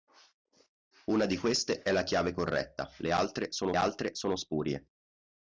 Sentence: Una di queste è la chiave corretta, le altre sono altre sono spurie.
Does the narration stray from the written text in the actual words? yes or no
no